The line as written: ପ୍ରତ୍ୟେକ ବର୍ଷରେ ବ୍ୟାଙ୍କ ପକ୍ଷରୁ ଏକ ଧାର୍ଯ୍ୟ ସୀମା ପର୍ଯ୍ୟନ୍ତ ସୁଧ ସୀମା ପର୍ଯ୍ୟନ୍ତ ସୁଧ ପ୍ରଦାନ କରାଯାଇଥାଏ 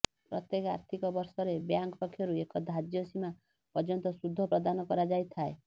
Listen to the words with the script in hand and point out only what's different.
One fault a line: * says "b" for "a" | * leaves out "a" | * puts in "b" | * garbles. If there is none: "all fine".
* puts in "ଆର୍ଥିକ"
* leaves out "ସୀମା ପର୍ଯ୍ୟନ୍ତ ସୁଧ"